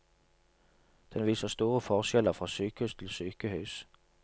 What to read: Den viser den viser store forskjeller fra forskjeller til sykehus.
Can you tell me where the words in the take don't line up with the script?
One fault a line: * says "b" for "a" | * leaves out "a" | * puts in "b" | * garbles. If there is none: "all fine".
* leaves out "den viser"
* says "sykehus" for "forskjeller"